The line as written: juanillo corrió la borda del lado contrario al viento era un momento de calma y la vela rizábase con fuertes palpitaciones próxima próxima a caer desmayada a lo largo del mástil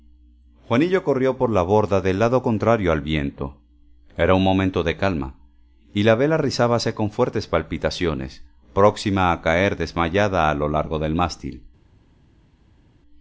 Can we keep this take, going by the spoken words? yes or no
no